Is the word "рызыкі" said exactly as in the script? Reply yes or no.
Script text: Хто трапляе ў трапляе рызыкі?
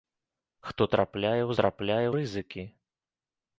yes